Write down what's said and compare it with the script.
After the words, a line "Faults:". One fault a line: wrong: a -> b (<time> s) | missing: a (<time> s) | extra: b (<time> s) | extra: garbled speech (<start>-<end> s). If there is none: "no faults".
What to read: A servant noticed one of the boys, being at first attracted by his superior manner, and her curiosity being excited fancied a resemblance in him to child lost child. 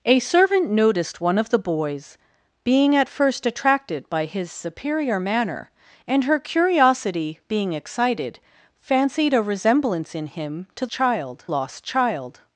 A servant noticed one of the boys, being at first attracted by his superior manner, and her curiosity being excited fancied a resemblance in him to child lost child.
Faults:
no faults